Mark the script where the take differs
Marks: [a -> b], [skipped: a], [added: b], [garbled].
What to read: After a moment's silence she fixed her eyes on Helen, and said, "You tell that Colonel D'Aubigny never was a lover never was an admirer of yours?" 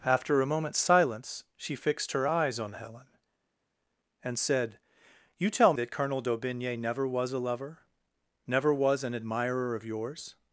After a moment's silence she fixed her eyes on Helen, and said, "You tell that Colonel D'Aubigny never was a lover never was an admirer of yours?"